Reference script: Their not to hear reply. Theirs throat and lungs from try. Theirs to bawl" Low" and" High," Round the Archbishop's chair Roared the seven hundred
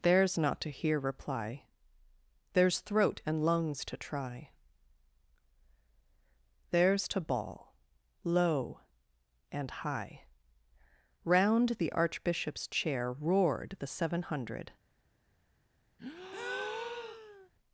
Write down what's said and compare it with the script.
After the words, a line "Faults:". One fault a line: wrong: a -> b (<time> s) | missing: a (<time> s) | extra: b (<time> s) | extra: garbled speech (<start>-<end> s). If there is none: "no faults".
Theirs not to hear reply. Theirs throat and lungs to try. Theirs to bawl" Low" and" High," Round the Archbishop's chair Roared the seven hundred
Faults:
wrong: Their -> Theirs (0.0 s)
wrong: from -> to (3.9 s)